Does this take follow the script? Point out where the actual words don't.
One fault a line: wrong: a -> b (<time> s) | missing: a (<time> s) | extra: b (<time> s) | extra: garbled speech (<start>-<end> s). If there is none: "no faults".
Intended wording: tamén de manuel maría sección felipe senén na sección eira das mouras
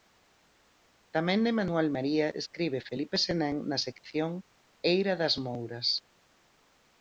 wrong: sección -> escribe (2.4 s)